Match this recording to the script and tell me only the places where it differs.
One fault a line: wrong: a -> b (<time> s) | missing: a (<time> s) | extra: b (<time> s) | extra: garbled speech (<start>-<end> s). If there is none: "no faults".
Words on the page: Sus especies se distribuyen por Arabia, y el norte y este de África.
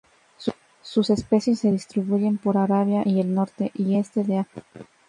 no faults